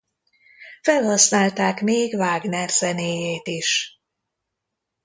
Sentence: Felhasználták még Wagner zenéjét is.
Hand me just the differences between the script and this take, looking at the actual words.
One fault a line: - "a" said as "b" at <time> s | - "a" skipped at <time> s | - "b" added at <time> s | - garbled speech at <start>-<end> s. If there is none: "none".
none